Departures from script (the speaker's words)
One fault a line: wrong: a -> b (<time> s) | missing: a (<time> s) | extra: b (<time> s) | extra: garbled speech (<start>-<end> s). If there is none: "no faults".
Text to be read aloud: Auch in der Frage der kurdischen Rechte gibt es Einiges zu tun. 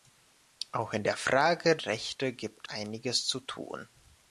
missing: der kurdischen (1.8 s)
missing: es (2.7 s)